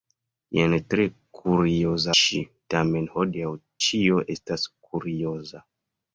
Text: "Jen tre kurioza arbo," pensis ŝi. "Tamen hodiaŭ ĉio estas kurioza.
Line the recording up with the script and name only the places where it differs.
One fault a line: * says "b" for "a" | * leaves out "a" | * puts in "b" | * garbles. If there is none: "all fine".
* leaves out "arbo pensis"